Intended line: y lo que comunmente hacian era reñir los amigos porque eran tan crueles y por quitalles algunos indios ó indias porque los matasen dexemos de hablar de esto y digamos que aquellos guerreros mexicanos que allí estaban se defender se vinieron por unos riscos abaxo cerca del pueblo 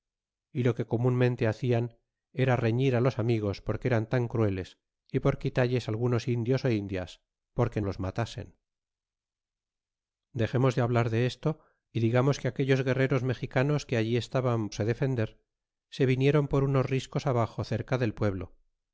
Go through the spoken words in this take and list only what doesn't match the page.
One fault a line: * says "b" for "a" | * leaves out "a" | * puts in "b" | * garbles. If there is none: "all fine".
all fine